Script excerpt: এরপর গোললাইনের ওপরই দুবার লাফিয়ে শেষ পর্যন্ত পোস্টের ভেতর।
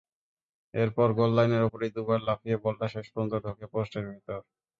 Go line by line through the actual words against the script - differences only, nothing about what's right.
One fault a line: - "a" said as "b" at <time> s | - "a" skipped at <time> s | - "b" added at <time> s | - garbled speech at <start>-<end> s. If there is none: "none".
- "বলটা" added at 2.6 s
- "ঢোকে" added at 3.4 s